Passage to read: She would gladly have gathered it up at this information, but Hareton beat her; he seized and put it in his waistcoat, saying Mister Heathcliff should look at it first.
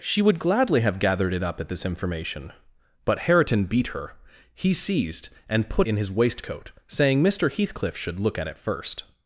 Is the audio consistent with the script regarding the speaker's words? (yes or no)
no